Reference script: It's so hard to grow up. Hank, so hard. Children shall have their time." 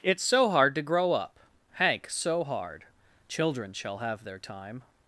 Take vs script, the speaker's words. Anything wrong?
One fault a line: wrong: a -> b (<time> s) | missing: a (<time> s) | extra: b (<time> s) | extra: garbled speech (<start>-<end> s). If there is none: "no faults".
no faults